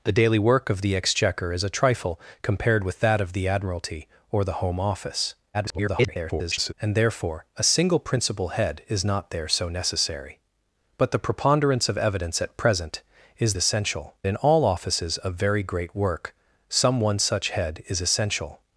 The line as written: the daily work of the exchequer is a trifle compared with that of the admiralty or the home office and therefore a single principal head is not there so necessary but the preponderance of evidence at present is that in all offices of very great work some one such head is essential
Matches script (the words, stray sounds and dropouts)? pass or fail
fail